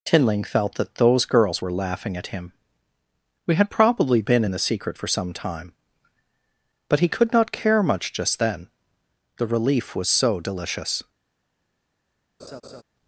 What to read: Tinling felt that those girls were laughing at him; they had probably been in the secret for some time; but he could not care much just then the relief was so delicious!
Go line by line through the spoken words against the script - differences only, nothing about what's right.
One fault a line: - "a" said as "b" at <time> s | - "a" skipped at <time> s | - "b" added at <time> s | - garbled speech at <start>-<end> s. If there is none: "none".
- "they" said as "we" at 3.4 s